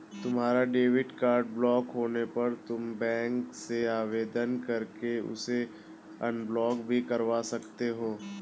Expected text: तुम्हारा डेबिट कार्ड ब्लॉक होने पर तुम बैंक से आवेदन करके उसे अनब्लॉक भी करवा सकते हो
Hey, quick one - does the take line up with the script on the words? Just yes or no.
yes